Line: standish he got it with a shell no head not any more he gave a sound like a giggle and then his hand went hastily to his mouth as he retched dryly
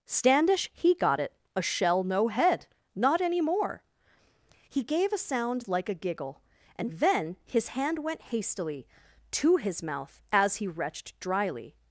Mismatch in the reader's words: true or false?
true